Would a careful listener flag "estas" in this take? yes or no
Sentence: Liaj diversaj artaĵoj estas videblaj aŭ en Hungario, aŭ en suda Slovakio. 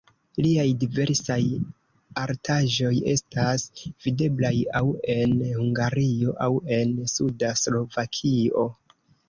no